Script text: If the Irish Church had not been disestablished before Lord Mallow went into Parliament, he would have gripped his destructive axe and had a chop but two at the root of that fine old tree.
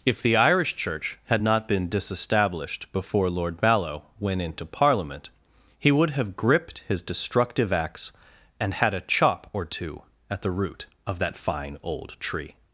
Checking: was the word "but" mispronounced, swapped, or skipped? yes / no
yes